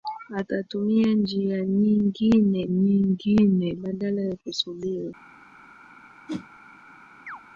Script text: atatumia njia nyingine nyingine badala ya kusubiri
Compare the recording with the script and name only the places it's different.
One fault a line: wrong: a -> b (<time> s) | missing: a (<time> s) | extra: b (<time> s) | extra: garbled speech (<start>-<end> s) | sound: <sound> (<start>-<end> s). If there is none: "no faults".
sound: whoosh (6.3-6.5 s)
sound: chirp (7.3-7.4 s)